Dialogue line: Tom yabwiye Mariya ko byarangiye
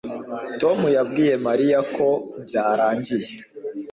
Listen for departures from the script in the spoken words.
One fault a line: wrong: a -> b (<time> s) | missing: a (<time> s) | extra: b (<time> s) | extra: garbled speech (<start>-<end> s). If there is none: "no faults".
no faults